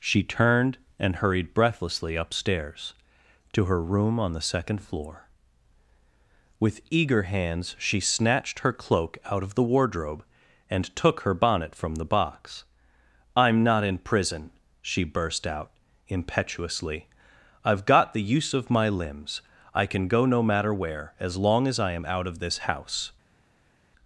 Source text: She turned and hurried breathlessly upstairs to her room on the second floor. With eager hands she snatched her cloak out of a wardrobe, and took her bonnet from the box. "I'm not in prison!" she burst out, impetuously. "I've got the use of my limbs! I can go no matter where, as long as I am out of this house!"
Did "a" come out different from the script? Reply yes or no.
yes